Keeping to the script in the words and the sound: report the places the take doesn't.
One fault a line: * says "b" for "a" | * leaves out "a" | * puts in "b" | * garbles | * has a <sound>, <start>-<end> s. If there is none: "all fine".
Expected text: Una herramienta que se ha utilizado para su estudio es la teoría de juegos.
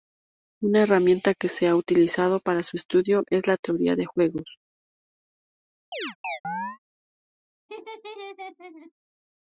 * has a chirp, 5.9-6.8 s
* has a laugh, 7.7-8.9 s